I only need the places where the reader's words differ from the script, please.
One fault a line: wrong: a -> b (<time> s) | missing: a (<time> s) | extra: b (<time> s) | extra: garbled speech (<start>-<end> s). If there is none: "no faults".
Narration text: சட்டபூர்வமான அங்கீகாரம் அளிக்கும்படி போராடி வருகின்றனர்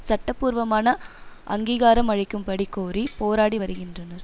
extra: கோரி (2.7 s)